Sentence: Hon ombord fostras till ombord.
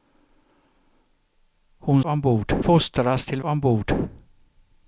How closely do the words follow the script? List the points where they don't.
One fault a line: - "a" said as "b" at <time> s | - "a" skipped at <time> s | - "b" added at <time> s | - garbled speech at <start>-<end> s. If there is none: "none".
none